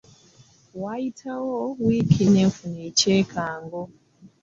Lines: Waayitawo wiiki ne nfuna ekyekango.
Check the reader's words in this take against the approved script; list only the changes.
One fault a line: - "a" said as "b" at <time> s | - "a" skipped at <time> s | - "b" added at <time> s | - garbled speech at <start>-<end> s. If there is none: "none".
none